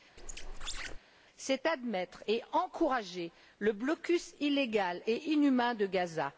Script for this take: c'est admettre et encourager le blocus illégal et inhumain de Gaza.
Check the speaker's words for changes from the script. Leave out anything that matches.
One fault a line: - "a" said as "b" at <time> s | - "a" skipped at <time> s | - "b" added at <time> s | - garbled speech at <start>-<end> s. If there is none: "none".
none